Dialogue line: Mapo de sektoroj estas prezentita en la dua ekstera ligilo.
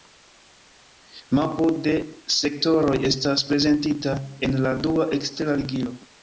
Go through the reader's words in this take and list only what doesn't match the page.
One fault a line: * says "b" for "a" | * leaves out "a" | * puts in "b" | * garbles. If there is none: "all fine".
all fine